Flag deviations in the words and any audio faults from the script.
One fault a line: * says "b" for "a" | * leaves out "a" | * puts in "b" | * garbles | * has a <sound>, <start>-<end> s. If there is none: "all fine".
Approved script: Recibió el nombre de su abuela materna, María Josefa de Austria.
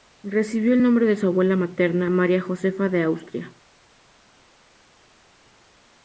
all fine